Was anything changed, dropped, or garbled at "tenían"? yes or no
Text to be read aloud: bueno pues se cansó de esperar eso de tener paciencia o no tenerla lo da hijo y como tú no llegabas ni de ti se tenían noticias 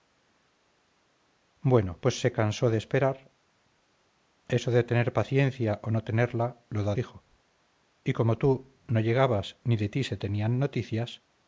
no